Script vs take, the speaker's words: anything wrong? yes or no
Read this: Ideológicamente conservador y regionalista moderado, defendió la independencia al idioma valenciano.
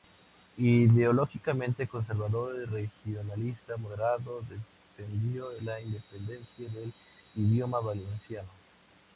yes